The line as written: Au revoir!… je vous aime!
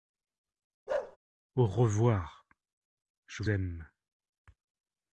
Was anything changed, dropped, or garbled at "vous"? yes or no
yes